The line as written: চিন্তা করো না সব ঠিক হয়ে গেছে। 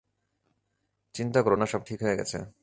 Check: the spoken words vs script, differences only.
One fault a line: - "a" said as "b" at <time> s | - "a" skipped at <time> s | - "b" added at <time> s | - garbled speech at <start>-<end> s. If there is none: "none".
none